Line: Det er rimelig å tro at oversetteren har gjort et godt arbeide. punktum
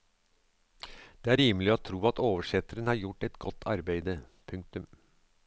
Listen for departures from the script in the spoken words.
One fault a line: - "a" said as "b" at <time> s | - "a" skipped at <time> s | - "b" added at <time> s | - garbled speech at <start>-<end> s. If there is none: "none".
none